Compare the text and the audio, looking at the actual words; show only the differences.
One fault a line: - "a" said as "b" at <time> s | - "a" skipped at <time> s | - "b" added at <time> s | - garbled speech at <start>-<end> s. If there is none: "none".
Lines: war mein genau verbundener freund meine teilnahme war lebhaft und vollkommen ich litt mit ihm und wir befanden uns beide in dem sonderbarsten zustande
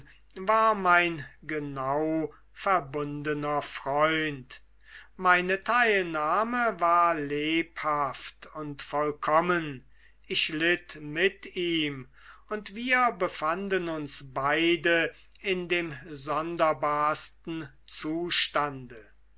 none